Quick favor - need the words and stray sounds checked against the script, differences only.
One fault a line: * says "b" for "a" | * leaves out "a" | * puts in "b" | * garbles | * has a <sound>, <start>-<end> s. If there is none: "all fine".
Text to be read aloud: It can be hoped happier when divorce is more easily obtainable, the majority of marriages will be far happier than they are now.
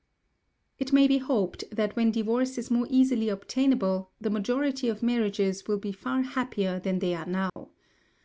* says "may" for "can"
* says "that" for "happier"
* has a dropout, 7.5-7.6 s